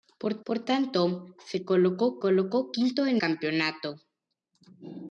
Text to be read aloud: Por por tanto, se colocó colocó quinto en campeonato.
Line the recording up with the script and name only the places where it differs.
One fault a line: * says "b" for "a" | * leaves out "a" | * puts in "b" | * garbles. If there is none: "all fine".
all fine